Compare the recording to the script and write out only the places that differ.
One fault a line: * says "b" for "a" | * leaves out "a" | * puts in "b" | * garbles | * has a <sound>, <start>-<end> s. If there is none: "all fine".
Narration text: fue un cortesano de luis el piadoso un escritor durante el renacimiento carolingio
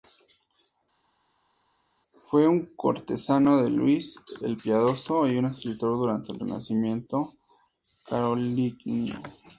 * puts in "y"